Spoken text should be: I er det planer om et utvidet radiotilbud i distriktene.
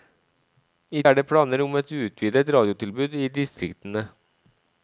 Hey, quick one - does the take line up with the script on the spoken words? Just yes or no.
yes